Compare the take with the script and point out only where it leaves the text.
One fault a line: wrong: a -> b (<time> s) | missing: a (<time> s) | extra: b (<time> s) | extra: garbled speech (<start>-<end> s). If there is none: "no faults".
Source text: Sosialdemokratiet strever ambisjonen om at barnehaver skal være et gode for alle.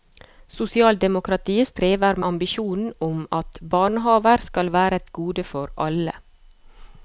no faults